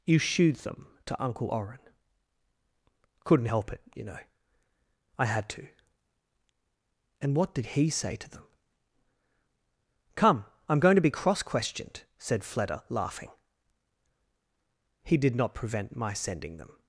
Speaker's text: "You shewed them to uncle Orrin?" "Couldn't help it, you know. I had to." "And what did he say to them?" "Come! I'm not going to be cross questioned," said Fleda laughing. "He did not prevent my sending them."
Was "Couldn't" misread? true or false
false